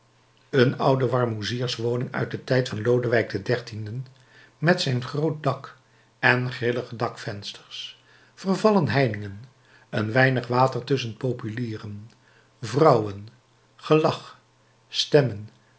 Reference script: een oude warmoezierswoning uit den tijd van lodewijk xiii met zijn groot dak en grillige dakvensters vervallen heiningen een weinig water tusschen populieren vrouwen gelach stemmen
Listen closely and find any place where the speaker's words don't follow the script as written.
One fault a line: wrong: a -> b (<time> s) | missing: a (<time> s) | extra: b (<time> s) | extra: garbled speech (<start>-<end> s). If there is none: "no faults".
no faults